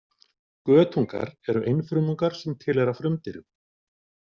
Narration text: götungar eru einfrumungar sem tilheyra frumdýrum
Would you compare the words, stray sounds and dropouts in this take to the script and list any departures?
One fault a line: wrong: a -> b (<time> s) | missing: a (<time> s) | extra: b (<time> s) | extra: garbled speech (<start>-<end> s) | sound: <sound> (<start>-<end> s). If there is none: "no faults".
no faults